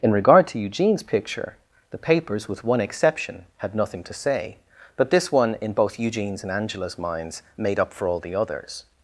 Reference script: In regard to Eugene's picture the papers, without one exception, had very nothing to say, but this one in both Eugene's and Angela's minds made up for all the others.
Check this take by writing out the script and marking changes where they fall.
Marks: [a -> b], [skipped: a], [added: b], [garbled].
In regard to Eugene's picture the papers, [without -> with] one exception, had [skipped: very] nothing to say, but this one in both Eugene's and Angela's minds made up for all the others.